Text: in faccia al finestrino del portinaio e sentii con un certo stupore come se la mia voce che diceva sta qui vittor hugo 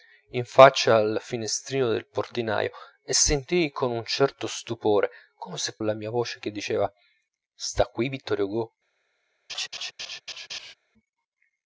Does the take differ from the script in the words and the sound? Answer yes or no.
yes